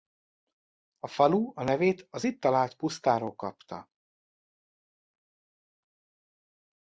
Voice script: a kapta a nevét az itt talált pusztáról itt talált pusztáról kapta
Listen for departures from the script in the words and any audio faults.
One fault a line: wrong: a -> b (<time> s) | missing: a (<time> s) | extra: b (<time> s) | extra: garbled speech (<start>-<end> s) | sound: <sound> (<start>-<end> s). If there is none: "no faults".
wrong: kapta -> falu (1.1 s)
missing: itt talált pusztáról (3.4 s)